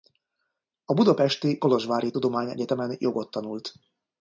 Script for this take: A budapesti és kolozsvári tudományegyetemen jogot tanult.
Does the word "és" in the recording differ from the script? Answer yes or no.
yes